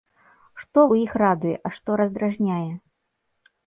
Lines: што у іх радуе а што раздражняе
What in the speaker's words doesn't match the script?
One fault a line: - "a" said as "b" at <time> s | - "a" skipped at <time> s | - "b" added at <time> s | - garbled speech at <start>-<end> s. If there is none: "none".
none